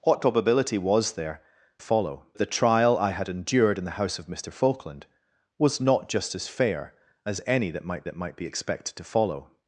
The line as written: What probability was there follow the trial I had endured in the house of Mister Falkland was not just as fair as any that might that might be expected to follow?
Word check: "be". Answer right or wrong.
right